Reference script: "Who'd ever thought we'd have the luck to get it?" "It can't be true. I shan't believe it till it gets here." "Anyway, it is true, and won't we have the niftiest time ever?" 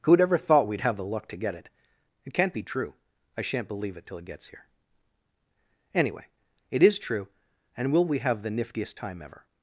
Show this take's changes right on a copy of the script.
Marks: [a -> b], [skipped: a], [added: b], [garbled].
"Who'd ever thought we'd have the luck to get it?" "It can't be true. I shan't believe it till it gets here." "Anyway, it is true, and [won't -> will] we have the niftiest time ever?"